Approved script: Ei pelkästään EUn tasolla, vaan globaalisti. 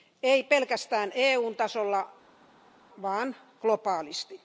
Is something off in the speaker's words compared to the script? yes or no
no